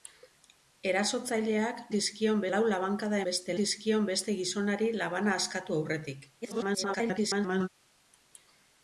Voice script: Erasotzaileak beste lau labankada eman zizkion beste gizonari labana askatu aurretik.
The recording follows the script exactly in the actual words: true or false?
false